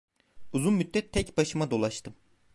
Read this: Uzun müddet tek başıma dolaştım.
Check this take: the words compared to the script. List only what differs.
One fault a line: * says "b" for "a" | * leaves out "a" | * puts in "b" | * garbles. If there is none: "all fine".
all fine